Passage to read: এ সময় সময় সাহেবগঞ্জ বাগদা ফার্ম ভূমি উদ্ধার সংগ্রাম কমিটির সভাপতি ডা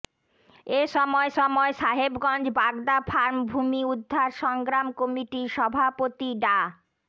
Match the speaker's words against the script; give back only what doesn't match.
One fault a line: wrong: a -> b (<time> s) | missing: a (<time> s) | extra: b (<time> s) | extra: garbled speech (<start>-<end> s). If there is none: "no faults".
no faults